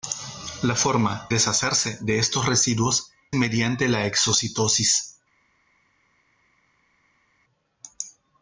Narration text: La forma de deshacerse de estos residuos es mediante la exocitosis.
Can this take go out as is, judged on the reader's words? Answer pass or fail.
fail